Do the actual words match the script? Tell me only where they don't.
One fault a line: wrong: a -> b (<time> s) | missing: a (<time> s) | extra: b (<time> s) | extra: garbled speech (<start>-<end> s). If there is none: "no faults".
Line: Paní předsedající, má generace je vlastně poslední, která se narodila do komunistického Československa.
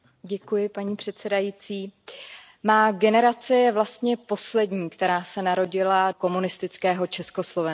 missing: do (6.1 s)